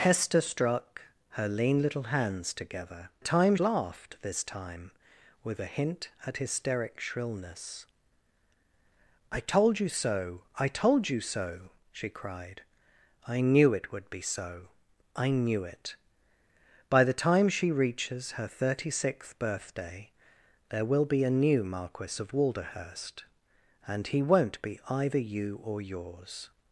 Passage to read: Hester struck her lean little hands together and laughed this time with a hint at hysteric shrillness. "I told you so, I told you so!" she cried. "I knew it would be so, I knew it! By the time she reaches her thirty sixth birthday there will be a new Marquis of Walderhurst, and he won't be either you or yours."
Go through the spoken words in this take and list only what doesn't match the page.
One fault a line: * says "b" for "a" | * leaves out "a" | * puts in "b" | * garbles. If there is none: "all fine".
* says "time" for "and"